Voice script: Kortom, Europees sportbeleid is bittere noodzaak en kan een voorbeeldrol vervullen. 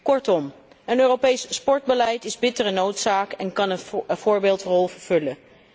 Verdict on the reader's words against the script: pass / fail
fail